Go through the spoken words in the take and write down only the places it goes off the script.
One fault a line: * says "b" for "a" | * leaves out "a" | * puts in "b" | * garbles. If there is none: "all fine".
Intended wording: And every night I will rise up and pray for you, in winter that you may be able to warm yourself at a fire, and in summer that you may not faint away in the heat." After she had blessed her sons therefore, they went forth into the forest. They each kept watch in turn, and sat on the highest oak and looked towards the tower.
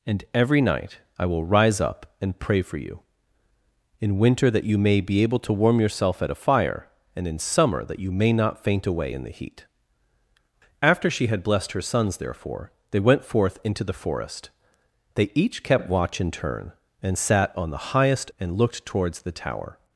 * leaves out "oak"